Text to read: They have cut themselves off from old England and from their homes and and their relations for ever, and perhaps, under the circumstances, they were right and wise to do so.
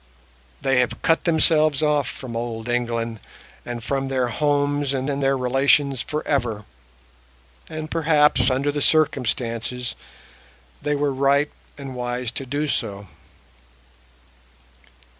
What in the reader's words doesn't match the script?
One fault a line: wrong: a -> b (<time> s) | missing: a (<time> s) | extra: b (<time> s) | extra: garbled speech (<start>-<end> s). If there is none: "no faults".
no faults